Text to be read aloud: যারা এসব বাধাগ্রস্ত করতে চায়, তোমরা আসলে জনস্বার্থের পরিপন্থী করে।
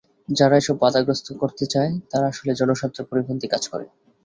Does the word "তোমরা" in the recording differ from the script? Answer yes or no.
yes